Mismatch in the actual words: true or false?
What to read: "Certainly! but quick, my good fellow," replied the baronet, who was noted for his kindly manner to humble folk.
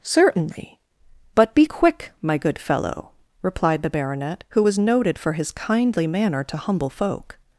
true